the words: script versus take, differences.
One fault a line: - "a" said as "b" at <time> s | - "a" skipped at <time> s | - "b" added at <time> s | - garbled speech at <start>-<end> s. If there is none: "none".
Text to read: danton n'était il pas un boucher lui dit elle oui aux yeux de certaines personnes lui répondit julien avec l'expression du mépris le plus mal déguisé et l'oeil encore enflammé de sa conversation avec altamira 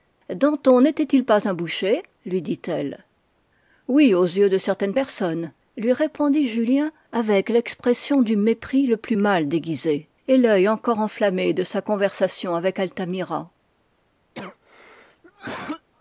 none